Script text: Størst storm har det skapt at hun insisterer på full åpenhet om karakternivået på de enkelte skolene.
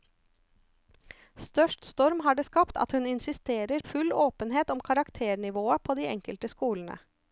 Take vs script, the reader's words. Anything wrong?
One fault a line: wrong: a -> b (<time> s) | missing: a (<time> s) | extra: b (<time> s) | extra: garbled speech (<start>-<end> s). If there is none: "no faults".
missing: på (3.8 s)